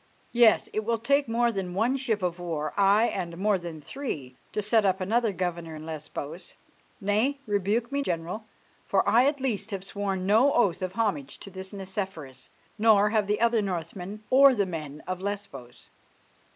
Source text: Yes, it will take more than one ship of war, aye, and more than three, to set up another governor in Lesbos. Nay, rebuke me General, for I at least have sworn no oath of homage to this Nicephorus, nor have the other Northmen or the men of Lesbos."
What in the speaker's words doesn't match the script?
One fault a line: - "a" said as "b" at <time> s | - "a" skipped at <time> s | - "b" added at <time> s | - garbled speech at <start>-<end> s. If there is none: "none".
none